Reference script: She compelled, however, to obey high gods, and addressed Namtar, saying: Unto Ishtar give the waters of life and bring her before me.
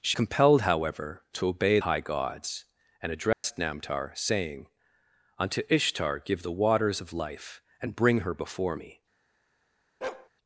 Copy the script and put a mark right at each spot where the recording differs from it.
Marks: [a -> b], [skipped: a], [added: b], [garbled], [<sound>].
She compelled, however, to obey high gods, and addressed [dropout] Namtar, saying: Unto Ishtar give the waters of life and bring her before me. [bark]